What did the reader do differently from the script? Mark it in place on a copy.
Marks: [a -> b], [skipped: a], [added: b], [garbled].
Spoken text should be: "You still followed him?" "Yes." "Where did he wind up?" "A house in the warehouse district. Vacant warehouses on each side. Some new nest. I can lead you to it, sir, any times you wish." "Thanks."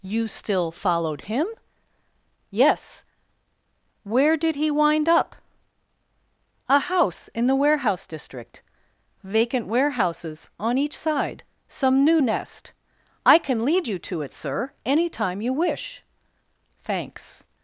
"You still followed him?" "Yes." "Where did he wind up?" "A house in the warehouse district. Vacant warehouses on each side. Some new nest. I can lead you to it, sir, any [times -> time] you wish." "Thanks."